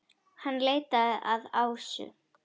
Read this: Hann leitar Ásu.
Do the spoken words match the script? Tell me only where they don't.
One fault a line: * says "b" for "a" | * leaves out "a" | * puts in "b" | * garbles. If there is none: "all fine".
* puts in "að"